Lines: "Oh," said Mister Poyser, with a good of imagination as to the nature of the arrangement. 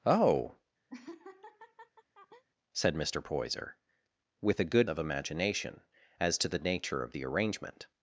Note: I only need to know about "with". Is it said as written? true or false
true